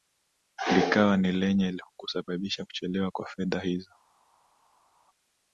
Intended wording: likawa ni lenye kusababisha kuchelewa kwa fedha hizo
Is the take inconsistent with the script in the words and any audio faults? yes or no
no